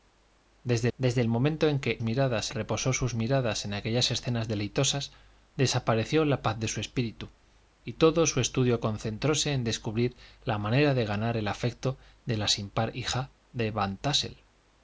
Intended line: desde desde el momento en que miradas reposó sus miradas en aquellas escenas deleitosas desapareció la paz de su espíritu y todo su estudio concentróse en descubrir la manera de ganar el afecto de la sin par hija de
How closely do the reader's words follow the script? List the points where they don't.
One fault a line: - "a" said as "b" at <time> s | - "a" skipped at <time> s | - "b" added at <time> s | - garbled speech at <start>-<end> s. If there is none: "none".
none